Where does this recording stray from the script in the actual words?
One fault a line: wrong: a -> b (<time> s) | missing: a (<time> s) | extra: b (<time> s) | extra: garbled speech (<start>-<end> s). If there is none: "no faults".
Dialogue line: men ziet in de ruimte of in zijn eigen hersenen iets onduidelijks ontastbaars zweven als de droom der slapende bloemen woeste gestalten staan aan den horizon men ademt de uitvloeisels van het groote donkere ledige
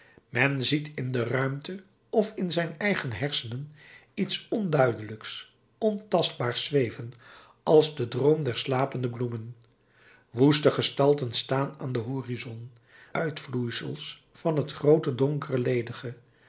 missing: men ademt de (12.7 s)